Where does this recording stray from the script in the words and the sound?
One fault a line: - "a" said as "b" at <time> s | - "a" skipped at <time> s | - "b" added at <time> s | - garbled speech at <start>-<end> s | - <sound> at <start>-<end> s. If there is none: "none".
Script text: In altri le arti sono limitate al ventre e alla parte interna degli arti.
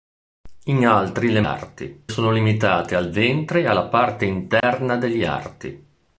- dropout at 4.6-4.6 s